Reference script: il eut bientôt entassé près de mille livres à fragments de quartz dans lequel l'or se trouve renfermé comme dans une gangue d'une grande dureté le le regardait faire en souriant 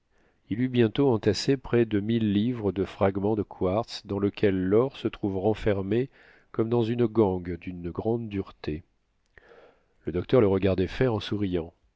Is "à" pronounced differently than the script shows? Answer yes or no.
yes